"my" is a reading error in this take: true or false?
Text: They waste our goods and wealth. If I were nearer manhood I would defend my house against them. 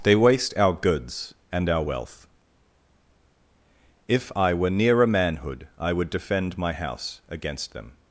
false